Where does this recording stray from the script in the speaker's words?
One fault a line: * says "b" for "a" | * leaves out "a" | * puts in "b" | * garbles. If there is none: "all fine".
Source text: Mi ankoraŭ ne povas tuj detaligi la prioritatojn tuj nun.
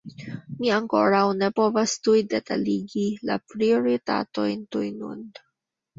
all fine